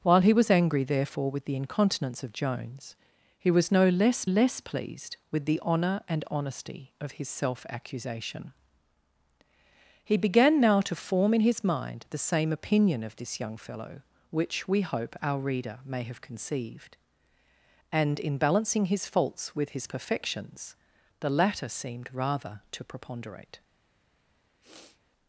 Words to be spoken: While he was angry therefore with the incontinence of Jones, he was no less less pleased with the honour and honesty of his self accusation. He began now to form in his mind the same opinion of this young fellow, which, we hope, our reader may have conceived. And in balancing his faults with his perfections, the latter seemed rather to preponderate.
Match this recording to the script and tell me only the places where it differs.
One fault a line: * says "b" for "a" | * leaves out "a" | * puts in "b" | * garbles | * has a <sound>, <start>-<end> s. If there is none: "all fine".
* has a sniff, 24.6-25.0 s